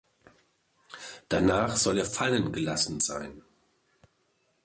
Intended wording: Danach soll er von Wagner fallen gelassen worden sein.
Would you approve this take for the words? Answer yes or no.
no